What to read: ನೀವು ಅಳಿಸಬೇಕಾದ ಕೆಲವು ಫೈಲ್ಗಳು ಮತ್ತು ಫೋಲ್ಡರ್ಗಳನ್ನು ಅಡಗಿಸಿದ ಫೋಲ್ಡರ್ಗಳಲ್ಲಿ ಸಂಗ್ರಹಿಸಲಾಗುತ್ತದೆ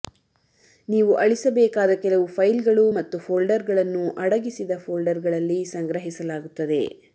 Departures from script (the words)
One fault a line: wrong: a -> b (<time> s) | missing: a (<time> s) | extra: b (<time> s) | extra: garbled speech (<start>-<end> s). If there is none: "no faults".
no faults